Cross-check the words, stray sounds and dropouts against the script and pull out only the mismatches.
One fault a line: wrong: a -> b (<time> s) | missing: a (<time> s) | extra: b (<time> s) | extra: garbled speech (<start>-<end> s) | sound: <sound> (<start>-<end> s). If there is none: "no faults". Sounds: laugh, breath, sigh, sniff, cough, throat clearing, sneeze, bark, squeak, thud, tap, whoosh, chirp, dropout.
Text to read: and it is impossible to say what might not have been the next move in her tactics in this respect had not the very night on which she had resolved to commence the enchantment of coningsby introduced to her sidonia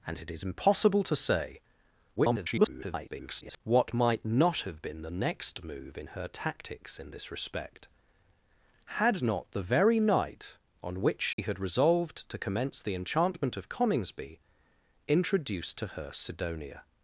extra: garbled speech (2.2-3.6 s)
sound: dropout (11.3-11.4 s)